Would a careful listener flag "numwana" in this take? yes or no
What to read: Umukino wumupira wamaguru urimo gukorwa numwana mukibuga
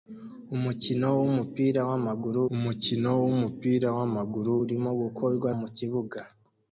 yes